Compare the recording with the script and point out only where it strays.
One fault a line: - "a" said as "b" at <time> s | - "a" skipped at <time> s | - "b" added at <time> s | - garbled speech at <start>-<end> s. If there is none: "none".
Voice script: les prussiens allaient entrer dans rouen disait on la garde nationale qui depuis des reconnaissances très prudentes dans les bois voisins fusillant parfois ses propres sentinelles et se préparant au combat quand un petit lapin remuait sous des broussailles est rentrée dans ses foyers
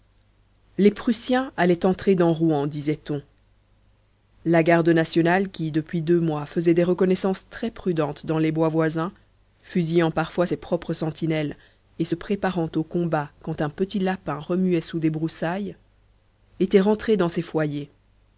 - "deux mois faisait" added at 6.0 s
- "est" said as "était" at 16.6 s